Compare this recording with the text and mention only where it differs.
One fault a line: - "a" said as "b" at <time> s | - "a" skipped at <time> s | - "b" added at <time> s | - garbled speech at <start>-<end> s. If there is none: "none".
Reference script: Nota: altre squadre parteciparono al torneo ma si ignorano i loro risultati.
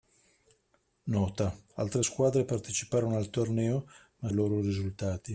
- "si ignorano" skipped at 4.3 s